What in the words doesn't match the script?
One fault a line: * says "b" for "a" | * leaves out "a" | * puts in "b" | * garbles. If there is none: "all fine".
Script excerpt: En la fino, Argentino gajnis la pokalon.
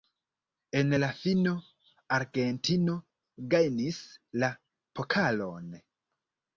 all fine